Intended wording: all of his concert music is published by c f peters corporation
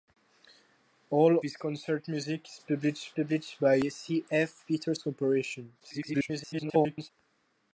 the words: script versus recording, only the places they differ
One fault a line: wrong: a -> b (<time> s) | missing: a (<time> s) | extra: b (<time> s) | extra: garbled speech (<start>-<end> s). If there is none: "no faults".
missing: of (1.4 s)
extra: published (3.1 s)
extra: garbled speech (5.8-7.1 s)